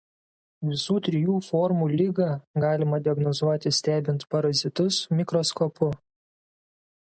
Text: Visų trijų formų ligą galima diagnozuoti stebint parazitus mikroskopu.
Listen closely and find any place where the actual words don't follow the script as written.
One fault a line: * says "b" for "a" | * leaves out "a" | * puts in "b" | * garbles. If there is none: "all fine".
all fine